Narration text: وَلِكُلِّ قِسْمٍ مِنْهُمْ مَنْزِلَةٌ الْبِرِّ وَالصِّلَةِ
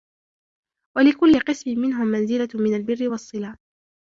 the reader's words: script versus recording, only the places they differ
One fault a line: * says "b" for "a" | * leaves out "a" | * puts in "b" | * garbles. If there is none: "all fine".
* puts in "مِنْ"